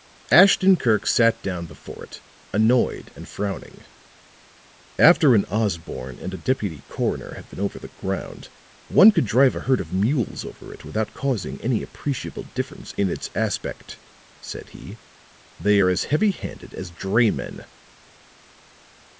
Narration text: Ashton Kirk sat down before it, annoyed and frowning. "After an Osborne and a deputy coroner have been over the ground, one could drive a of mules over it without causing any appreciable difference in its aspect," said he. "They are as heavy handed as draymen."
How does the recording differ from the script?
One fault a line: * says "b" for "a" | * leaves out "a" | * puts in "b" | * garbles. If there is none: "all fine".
* puts in "herd"